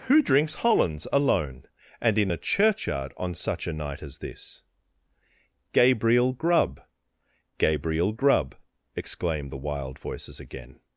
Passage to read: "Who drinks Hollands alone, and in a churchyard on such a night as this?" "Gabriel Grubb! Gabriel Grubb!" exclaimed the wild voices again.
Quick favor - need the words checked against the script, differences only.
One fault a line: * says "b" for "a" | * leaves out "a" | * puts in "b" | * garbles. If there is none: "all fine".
all fine